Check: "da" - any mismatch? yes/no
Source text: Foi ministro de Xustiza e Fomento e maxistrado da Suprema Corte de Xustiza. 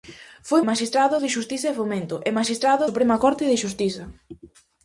yes